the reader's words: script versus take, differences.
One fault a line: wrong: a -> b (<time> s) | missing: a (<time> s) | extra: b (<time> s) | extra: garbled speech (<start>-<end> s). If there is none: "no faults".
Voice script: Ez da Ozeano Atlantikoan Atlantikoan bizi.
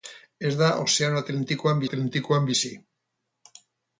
no faults